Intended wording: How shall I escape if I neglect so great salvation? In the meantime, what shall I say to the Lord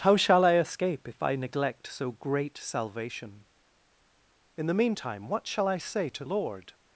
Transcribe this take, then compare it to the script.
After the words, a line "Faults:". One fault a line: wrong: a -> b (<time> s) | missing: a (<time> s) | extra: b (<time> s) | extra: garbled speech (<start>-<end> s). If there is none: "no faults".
How shall I escape if I neglect so great salvation? In the meantime, what shall I say to Lord
Faults:
missing: the (6.2 s)